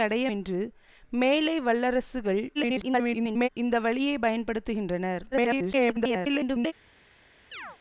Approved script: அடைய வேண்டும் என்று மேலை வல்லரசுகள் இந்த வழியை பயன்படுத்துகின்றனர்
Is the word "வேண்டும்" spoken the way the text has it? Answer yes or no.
no